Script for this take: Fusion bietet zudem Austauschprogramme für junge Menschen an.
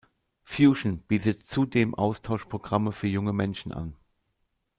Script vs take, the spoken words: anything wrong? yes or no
no